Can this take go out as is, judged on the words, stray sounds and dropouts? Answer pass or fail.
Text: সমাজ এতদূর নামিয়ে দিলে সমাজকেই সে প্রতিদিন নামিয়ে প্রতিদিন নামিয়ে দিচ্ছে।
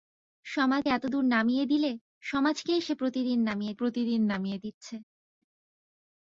pass